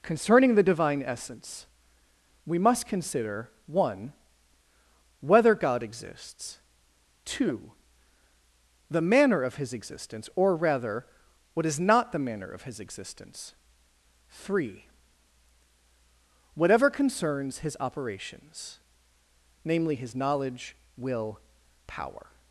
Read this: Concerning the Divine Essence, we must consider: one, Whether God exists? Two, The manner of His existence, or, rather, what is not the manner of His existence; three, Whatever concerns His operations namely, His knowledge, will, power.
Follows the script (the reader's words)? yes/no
yes